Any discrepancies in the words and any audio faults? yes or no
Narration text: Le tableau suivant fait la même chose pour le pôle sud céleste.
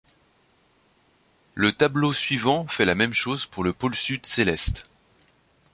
no